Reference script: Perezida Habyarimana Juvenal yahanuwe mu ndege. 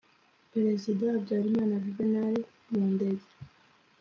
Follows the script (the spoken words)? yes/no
no